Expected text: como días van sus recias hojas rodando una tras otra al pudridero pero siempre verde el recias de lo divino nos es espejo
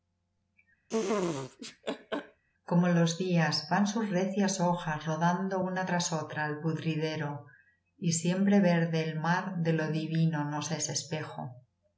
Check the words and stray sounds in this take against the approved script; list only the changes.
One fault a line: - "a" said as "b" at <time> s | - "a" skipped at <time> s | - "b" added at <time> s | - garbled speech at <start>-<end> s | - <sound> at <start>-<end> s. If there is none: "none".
- laugh at 0.9-2.4 s
- "los" added at 2.9 s
- "pero" said as "y" at 8.0 s
- "recias" said as "mar" at 9.2 s